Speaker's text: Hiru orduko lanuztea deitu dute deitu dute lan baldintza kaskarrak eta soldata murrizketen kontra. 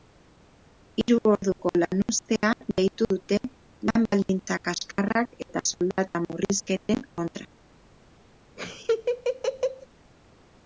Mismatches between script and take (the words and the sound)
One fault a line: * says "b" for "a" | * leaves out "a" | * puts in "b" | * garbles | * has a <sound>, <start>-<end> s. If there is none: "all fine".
* leaves out "deitu dute"
* has a dropout, 6.8-6.9 s
* has a laugh, 8.6-9.9 s